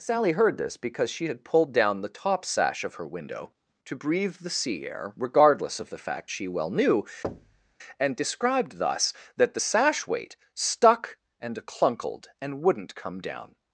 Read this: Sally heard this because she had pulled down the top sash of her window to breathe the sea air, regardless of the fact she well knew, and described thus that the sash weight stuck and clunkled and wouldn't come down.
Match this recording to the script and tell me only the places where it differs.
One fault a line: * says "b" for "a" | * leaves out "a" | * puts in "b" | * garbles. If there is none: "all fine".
all fine